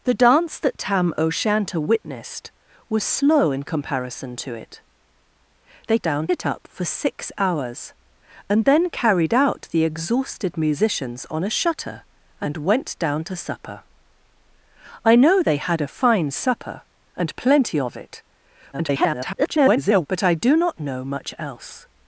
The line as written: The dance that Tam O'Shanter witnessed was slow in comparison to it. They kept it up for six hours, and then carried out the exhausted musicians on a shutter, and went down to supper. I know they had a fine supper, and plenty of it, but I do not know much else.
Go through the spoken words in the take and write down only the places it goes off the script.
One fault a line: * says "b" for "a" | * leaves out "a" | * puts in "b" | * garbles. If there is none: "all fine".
* says "down" for "kept"
* garbles